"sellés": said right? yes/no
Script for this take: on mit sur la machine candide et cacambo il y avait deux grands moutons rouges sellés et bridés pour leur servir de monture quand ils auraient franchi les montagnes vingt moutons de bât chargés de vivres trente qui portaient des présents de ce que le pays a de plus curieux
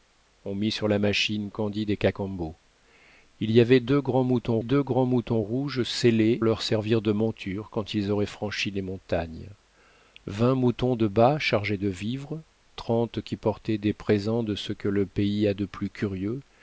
no